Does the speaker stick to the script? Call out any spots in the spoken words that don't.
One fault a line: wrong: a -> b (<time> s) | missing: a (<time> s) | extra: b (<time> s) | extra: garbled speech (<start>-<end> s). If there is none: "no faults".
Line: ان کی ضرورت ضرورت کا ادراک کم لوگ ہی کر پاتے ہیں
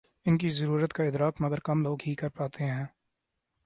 missing: ضرورت (0.9 s)
extra: مگر (1.4 s)